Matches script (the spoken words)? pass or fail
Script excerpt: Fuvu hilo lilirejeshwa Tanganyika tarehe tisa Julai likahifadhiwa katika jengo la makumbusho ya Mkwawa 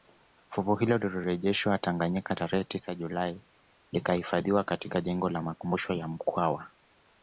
pass